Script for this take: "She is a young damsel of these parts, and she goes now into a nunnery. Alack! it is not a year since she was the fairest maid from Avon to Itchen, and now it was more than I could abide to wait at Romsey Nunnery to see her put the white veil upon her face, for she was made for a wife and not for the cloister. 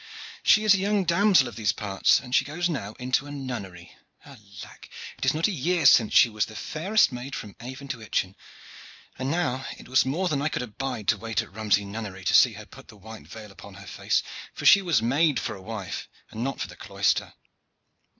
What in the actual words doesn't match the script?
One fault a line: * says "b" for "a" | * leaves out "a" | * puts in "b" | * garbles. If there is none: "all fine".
all fine